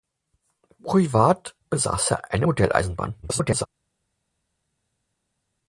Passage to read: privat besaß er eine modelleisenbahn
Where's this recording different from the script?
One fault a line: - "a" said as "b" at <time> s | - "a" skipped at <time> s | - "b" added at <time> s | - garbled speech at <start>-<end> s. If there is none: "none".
- garbled speech at 3.2-3.7 s